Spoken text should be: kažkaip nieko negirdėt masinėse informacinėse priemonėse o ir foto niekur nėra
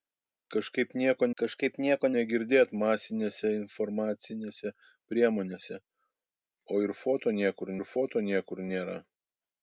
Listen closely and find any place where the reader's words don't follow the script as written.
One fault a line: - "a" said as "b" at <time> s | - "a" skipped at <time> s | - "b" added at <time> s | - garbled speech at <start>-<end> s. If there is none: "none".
- "kažkaip nieko" added at 1.4 s
- "ir foto niekur" added at 7.8 s